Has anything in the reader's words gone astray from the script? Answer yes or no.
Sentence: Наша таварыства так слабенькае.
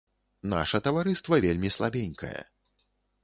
yes